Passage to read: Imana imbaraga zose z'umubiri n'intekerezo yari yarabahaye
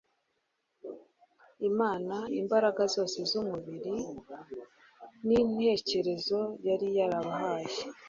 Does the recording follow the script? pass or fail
pass